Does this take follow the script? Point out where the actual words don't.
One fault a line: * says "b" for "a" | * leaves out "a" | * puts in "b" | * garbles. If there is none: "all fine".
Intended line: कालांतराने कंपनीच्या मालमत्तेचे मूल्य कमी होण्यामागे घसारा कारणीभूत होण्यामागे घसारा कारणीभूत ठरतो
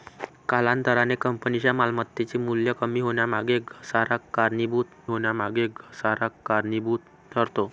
all fine